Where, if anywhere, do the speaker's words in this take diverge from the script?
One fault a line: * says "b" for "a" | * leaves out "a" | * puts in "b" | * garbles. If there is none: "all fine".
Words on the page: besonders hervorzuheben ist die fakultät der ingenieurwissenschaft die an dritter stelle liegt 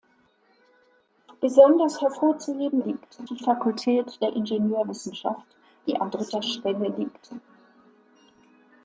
* says "liegt" for "ist"